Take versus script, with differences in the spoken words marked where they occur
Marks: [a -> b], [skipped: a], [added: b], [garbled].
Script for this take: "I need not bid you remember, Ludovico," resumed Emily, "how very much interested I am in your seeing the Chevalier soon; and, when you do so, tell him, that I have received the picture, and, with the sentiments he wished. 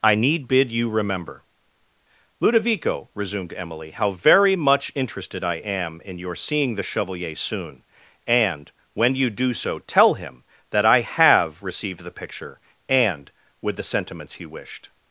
"I need [skipped: not] bid you remember, Ludovico," resumed Emily, "how very much interested I am in your seeing the Chevalier soon; and, when you do so, tell him, that I have received the picture, and, with the sentiments he wished.